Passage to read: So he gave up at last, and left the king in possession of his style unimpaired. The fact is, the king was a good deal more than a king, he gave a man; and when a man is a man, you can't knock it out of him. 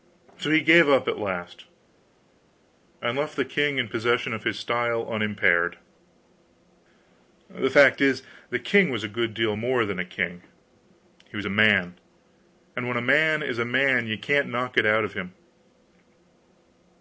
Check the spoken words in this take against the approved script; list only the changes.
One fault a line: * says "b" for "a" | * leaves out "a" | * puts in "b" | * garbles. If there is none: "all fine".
* says "was" for "gave"